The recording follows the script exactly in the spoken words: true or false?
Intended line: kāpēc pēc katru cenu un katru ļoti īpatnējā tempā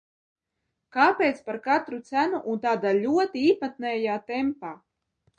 false